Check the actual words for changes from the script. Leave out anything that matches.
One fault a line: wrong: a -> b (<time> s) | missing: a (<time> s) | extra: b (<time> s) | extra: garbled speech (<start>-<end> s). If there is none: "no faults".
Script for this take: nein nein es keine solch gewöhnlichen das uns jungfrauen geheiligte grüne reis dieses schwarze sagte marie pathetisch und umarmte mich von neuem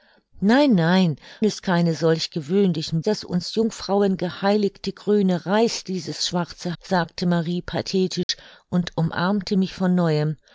no faults